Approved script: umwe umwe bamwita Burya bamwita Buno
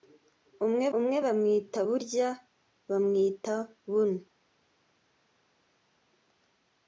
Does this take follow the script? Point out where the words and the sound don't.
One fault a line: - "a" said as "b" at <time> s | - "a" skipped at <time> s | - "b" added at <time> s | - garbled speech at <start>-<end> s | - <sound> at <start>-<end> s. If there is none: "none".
none